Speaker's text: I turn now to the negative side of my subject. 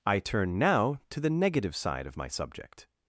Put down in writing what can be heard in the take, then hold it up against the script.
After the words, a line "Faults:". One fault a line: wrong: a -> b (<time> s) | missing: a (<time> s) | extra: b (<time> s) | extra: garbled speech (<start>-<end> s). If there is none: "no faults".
I turn now to the negative side of my subject.
Faults:
no faults